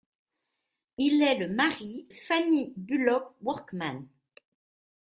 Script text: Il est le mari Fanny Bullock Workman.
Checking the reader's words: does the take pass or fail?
pass